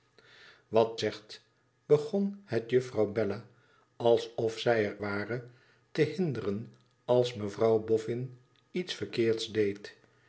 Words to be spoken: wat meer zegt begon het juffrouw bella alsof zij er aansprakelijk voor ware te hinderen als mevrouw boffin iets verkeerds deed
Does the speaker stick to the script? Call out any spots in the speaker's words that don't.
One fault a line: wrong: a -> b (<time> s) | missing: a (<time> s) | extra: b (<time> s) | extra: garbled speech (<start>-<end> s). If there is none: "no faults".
missing: meer (1.0 s)
missing: aansprakelijk voor (5.0 s)